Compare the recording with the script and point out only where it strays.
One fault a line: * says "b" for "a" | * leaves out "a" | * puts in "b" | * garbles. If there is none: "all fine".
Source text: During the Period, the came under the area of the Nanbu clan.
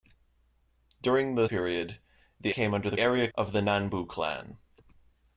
all fine